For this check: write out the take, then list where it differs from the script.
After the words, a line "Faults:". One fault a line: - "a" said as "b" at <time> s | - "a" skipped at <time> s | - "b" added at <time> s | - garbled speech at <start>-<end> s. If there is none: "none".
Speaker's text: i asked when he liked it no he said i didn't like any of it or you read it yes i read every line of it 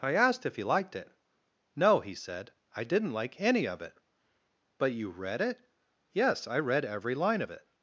i asked if he liked it no he said i didn't like any of it but you read it yes i read every line of it
Faults:
- "when" said as "if" at 0.5 s
- "or" said as "but" at 4.8 s